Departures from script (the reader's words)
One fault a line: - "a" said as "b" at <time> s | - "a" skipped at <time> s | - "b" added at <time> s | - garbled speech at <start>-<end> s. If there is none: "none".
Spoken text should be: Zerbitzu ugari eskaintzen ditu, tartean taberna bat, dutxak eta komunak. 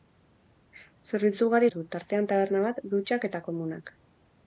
- "eskaintzen" skipped at 1.7 s